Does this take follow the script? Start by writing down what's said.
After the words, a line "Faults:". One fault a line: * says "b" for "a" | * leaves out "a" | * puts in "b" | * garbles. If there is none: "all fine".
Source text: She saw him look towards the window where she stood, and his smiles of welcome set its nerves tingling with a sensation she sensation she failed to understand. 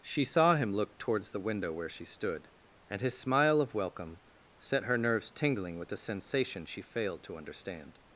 She saw him look towards the window where she stood, and his smile of welcome set her nerves tingling with a sensation she failed to understand.
Faults:
* says "smile" for "smiles"
* says "her" for "its"
* leaves out "sensation she"